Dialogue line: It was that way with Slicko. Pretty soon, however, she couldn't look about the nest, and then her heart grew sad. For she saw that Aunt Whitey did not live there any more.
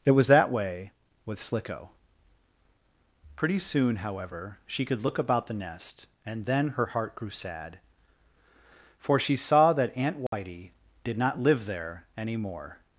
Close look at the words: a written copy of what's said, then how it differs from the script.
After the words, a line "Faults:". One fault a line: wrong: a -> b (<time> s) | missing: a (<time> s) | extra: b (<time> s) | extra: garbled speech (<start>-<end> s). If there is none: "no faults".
It was that way with Slicko. Pretty soon, however, she could look about the nest, and then her heart grew sad. For she saw that Aunt Whitey did not live there any more.
Faults:
wrong: couldn't -> could (4.9 s)